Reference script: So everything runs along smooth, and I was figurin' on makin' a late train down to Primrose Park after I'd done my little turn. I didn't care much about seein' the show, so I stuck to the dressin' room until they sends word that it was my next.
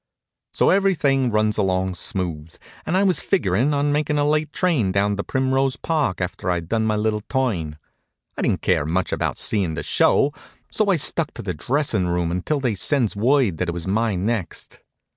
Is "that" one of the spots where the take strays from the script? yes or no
no